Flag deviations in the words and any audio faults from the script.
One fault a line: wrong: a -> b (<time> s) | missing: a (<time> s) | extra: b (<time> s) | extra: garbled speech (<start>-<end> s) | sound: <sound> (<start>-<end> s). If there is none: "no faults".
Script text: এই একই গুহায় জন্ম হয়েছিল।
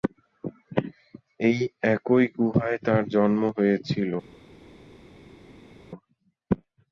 extra: তার (2.9 s)